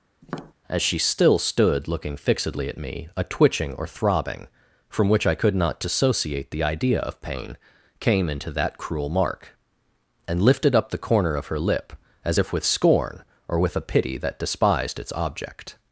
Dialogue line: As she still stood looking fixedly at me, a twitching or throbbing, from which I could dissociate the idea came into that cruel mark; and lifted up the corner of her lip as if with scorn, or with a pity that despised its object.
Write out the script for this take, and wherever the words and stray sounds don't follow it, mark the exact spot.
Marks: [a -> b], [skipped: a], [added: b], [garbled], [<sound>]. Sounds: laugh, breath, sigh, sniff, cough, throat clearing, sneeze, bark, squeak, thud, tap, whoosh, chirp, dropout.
[tap] As she still stood looking fixedly at me, a twitching or throbbing, from which I could [added: not] dissociate the idea [added: of pain] came into that cruel mark; and lifted up the corner of her lip as if with scorn, or with a pity that despised its object.